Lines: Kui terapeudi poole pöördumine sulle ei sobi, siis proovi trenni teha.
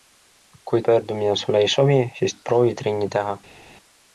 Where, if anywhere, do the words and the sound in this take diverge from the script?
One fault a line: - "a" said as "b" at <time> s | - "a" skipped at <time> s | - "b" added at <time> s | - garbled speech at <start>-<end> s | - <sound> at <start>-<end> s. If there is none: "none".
- "terapeudi poole" skipped at 0.8 s